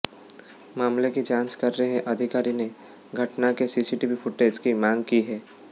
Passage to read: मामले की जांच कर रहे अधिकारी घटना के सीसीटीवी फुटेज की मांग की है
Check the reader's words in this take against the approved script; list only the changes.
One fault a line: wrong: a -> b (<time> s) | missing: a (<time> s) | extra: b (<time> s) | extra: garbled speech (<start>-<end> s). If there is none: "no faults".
extra: ने (2.5 s)